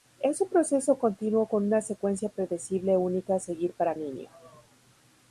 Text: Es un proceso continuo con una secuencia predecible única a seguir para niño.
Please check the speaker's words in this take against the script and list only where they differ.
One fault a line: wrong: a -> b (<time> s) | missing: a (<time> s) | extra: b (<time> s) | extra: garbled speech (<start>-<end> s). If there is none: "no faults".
no faults